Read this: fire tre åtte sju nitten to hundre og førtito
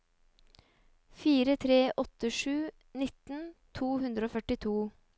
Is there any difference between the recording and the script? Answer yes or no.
no